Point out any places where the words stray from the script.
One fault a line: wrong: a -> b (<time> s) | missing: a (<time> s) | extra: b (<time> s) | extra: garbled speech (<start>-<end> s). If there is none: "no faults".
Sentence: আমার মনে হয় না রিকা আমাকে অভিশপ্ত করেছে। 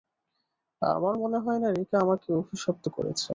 no faults